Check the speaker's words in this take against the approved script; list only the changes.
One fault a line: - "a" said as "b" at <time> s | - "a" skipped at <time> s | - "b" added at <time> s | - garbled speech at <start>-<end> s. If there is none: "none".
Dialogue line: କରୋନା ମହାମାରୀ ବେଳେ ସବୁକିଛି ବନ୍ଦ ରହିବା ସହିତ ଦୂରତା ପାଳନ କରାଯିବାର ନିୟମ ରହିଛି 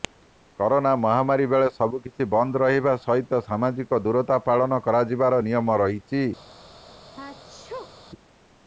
- "ସାମାଜିକ" added at 3.5 s